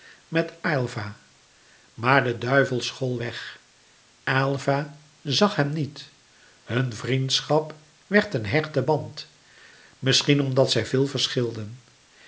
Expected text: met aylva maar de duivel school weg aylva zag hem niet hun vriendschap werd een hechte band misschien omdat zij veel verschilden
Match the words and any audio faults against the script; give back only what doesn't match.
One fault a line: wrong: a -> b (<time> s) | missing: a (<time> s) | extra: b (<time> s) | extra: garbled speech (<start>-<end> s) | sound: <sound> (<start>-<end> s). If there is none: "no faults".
no faults